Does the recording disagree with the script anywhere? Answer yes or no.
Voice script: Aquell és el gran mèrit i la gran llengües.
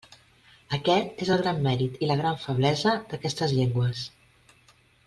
yes